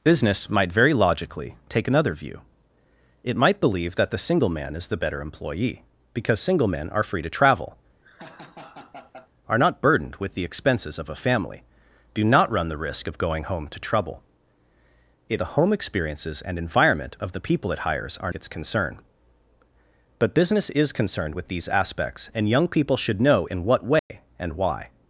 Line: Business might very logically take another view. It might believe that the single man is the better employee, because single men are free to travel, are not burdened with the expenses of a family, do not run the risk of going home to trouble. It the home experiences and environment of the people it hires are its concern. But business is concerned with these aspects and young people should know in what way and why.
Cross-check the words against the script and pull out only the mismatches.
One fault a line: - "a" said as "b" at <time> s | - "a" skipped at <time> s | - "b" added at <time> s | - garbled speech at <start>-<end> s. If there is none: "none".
none